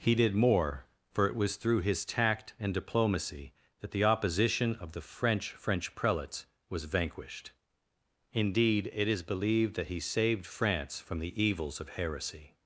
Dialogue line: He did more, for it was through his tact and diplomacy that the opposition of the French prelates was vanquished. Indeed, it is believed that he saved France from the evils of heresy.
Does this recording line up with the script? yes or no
no